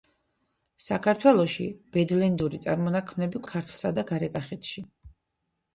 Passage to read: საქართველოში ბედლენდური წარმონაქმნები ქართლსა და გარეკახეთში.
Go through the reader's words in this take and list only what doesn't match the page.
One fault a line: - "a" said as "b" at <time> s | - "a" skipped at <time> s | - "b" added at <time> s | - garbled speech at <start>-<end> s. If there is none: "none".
none